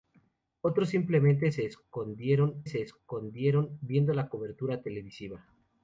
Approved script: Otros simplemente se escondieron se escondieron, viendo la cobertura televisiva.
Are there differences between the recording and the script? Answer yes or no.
no